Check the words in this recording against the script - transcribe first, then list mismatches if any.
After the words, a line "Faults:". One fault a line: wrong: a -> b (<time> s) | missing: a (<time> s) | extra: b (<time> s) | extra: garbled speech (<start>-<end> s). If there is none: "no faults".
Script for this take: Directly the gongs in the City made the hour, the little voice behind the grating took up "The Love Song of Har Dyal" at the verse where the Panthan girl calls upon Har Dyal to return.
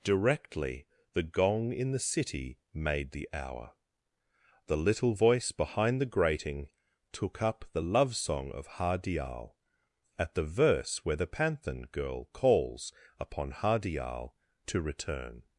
Directly the gong in the City made the hour, the little voice behind the grating took up "The Love Song of Har Dyal" at the verse where the Panthan girl calls upon Har Dyal to return.
Faults:
wrong: gongs -> gong (1.2 s)